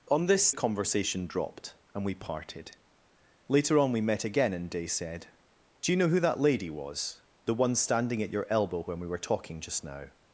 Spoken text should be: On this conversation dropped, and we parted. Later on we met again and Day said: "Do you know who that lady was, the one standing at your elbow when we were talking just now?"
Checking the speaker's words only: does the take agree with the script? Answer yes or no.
yes